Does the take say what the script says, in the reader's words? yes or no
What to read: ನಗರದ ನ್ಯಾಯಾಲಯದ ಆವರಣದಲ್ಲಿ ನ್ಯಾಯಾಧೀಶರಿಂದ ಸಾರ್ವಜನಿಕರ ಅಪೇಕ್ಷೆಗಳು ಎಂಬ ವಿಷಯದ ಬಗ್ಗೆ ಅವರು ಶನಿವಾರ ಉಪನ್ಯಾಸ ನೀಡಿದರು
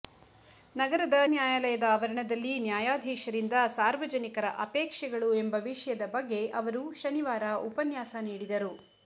yes